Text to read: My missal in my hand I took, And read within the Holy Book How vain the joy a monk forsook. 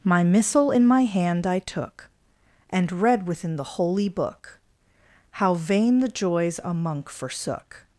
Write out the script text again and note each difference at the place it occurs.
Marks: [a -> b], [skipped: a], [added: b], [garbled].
My missal in my hand I took, And read within the Holy Book How vain the [joy -> joys] a monk forsook.